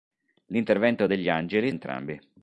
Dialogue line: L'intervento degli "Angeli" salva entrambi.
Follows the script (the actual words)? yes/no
no